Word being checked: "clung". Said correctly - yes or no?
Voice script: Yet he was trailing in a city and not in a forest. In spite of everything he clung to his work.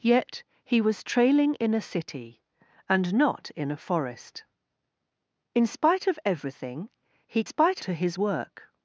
no